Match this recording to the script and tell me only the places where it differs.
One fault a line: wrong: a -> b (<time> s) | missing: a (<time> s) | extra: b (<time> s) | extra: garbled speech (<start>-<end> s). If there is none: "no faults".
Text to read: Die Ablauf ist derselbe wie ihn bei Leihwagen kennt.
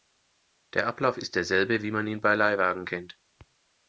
wrong: Die -> Der (0.7 s)
extra: man (1.9 s)